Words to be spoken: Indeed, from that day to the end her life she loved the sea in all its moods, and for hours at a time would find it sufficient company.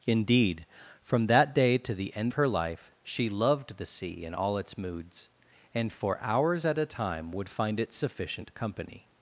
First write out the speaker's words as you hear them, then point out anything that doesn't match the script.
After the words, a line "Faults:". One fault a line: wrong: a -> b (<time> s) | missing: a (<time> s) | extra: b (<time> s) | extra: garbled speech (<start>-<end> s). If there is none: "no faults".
Indeed, from that day to the end her life she loved the sea in all its moods, and for hours at a time would find it sufficient company.
Faults:
no faults